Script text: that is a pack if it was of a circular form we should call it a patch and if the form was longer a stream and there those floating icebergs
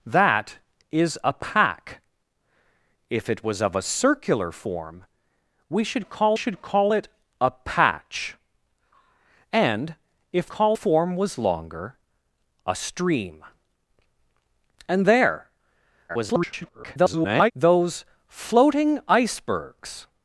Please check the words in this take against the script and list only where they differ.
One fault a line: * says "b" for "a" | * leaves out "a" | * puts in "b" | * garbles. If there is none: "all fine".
* puts in "should call"
* says "call" for "the"
* garbles